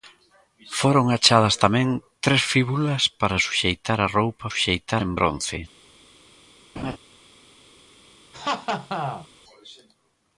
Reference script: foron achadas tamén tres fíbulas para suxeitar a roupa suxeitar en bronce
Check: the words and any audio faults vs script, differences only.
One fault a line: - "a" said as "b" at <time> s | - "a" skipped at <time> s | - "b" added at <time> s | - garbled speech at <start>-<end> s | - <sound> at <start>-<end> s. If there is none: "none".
- laugh at 6.8-7.0 s
- laugh at 8.3-9.3 s